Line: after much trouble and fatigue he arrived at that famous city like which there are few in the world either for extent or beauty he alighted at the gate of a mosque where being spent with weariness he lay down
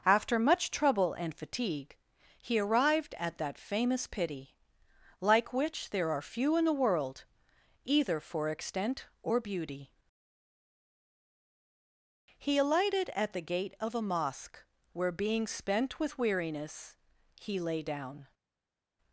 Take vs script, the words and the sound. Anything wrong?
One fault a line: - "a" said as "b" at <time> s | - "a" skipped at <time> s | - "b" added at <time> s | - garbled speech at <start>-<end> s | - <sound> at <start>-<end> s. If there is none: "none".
- "city" said as "pity" at 4.1 s